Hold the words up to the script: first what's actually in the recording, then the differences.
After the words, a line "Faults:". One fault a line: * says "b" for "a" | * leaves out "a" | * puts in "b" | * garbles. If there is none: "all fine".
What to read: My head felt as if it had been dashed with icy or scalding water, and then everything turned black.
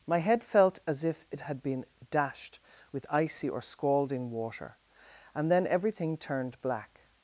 My head felt as if it had been dashed with icy or scalding water, and then everything turned black.
Faults:
all fine